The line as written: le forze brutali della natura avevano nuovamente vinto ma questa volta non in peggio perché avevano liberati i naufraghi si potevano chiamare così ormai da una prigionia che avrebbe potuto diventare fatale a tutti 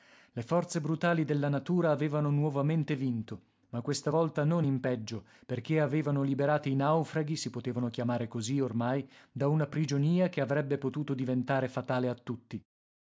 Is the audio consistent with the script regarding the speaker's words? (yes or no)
yes